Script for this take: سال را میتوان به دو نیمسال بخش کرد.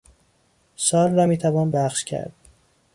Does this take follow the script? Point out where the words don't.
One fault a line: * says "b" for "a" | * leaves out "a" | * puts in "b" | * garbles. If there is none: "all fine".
* leaves out "به دو نیمسال"